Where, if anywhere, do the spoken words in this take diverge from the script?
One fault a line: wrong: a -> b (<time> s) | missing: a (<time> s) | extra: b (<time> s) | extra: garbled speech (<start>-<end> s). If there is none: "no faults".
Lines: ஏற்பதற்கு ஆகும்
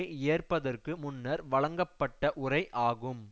extra: முன்னர் வழங்கப்பட்ட உரை (1.0 s)